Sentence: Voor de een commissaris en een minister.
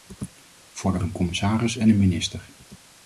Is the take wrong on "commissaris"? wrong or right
right